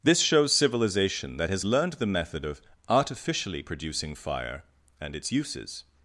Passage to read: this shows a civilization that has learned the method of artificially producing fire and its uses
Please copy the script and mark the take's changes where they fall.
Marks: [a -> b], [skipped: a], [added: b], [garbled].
this shows [skipped: a] civilization that has learned the method of artificially producing fire and its uses